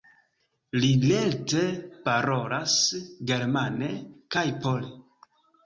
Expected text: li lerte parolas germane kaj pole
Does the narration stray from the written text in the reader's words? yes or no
no